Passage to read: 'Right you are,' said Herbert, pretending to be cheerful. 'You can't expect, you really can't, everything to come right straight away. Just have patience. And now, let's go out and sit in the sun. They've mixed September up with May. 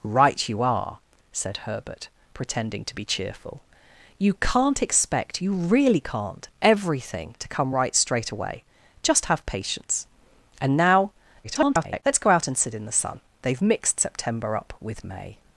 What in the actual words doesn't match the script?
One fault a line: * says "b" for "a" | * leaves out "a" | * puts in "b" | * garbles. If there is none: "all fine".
* garbles